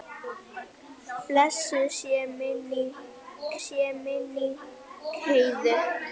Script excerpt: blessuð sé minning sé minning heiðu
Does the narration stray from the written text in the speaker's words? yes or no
no